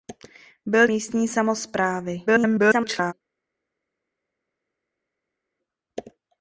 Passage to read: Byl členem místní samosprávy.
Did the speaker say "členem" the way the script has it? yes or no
no